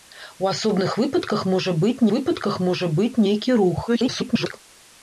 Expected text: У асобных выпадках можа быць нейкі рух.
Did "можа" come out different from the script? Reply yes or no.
no